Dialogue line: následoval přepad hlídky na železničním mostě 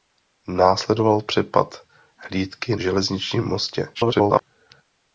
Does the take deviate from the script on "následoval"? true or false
false